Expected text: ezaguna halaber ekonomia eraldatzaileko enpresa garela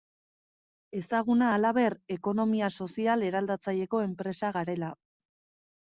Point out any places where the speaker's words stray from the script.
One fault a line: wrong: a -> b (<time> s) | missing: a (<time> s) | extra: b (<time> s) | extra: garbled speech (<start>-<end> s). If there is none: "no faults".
extra: sozial (2.9 s)